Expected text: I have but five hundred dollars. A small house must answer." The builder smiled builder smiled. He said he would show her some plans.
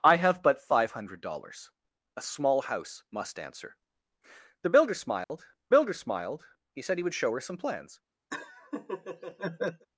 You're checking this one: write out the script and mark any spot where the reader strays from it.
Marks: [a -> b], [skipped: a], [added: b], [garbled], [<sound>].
I have but five hundred dollars. A small house must answer." The builder smiled [dropout] builder smiled. He said he would show her some plans. [laugh]